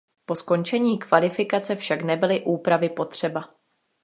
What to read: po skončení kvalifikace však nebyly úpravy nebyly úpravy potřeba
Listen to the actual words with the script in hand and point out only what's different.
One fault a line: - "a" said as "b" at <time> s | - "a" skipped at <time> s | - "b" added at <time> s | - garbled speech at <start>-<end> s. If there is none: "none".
- "nebyly úpravy" skipped at 2.9 s